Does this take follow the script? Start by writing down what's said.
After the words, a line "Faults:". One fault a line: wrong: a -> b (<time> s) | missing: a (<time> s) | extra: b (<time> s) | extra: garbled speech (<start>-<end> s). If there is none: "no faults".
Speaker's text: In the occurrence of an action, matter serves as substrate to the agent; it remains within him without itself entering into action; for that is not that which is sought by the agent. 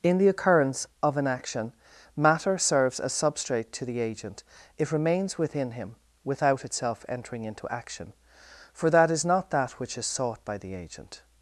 In the occurrence of an action, matter serves as substrate to the agent; it remains within him without itself entering into action; for that is not that which is sought by the agent.
Faults:
no faults